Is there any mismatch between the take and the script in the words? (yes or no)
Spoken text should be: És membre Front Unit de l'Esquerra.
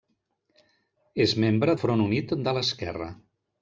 no